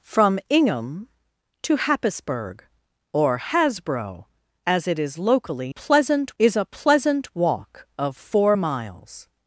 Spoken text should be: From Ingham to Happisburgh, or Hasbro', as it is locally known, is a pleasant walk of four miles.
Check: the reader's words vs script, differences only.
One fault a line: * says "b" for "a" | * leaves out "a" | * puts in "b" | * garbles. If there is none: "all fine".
* says "pleasant" for "known"